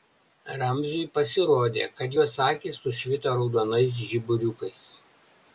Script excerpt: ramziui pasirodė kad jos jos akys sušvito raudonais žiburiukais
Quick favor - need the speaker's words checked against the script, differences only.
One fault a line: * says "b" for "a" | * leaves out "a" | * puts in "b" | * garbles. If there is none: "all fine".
* leaves out "jos"